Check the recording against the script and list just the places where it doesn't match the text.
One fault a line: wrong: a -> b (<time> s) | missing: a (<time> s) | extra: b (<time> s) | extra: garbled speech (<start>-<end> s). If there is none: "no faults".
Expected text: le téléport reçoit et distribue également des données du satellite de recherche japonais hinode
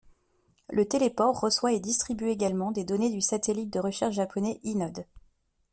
no faults